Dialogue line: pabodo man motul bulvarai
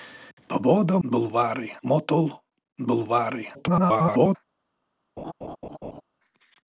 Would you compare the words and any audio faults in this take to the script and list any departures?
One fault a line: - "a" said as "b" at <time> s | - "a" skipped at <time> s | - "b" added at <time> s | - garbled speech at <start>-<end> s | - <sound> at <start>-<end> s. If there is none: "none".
- "man" said as "bulvarai" at 1.1 s
- garbled speech at 3.5-4.4 s
- laugh at 5.2-6.0 s